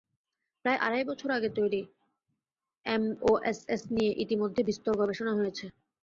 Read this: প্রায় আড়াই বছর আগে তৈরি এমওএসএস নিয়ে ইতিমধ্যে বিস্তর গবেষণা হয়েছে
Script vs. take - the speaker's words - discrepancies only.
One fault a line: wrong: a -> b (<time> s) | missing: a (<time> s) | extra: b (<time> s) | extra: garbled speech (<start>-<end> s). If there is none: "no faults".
no faults